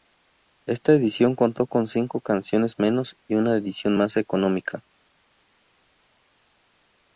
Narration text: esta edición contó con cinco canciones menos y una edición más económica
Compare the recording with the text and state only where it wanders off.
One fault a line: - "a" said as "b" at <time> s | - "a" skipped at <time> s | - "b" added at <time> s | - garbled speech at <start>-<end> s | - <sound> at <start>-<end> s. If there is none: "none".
none